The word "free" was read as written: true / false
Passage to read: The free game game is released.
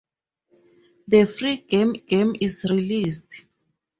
true